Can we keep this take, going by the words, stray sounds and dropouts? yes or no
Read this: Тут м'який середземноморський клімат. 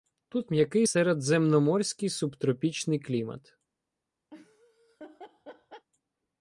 no